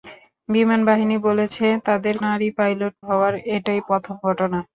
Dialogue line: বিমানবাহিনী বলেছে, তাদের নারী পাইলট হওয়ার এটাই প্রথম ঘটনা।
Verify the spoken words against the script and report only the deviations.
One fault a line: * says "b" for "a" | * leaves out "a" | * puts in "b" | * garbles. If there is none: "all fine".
all fine